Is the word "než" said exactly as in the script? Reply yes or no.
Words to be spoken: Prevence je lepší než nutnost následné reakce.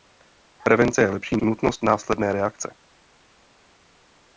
no